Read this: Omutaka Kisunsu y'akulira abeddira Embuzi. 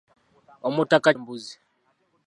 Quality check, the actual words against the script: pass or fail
fail